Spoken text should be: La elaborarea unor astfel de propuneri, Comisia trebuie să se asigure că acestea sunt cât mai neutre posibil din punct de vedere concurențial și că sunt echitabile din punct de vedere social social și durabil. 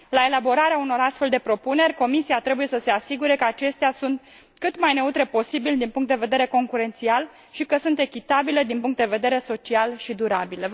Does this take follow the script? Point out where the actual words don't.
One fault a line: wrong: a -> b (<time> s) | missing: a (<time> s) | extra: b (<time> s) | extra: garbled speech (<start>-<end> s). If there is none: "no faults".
missing: social (10.0 s)